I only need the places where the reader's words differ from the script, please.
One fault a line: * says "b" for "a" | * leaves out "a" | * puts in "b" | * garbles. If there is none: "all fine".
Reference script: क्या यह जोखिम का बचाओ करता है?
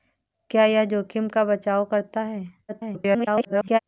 * garbles